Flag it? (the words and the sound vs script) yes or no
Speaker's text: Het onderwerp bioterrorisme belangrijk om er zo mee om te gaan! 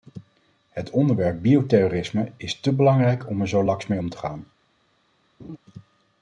yes